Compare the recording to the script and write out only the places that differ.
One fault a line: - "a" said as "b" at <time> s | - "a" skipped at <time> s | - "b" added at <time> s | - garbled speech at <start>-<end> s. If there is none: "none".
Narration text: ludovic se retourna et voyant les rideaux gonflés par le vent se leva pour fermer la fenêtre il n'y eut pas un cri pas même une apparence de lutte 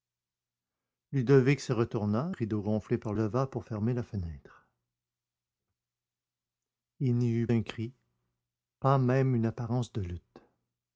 - "et voyant les" skipped at 2.3 s
- "le vent se" skipped at 3.1 s
- "pas" skipped at 7.5 s